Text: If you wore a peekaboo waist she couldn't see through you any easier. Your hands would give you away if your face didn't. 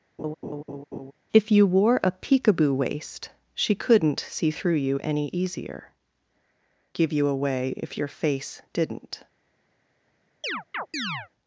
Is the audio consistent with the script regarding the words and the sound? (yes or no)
no